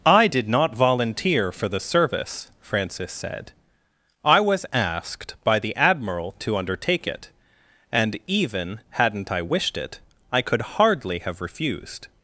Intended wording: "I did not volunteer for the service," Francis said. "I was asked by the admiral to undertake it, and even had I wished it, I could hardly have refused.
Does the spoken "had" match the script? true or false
false